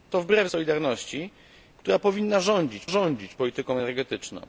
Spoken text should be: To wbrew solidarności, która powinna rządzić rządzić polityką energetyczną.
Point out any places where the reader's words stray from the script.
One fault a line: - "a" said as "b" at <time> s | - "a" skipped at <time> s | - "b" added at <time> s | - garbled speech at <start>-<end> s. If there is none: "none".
none